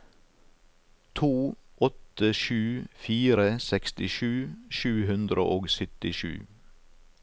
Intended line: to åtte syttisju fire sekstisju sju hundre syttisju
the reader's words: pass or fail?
fail